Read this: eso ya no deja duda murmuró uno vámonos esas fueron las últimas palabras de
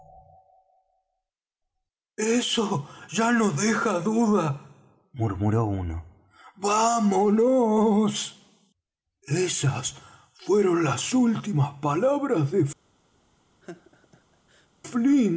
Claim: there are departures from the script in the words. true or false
false